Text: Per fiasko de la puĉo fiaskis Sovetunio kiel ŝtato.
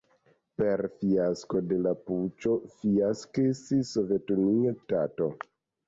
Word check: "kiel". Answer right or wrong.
wrong